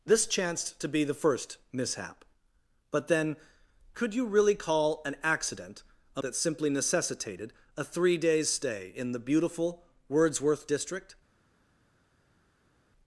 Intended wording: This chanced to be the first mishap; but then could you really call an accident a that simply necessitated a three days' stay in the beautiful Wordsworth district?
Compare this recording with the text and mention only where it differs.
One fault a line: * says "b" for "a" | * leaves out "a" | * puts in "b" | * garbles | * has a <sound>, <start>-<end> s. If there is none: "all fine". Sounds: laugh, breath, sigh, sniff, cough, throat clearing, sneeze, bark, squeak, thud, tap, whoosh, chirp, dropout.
all fine